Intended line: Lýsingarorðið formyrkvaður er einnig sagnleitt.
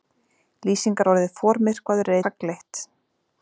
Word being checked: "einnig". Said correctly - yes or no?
no